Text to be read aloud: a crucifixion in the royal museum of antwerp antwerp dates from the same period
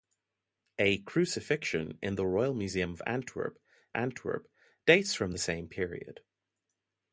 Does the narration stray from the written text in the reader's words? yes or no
no